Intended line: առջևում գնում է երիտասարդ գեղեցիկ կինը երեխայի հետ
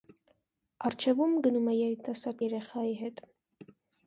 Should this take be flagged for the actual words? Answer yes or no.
yes